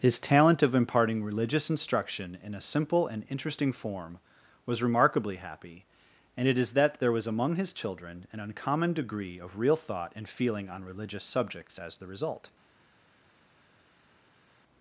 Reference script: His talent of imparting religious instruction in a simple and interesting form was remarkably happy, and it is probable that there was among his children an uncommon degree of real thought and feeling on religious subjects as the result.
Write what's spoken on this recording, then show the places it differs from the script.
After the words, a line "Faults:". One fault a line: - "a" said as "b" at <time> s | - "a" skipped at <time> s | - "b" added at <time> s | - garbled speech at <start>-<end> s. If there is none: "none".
His talent of imparting religious instruction in a simple and interesting form was remarkably happy, and it is that there was among his children an uncommon degree of real thought and feeling on religious subjects as the result.
Faults:
- "probable" skipped at 6.7 s